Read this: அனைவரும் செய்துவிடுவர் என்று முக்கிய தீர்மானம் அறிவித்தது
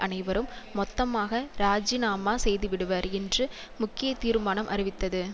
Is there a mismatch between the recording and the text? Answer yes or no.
yes